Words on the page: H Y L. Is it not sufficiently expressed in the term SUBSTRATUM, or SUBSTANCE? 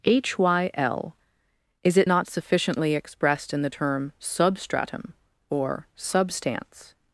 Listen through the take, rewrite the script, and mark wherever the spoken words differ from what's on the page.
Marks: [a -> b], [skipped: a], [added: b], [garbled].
H Y L. Is it not sufficiently expressed in the term SUBSTRATUM, or SUBSTANCE?